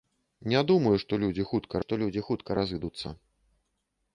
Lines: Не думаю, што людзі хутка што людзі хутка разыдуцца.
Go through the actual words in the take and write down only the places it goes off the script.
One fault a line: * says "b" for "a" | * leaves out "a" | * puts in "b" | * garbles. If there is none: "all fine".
all fine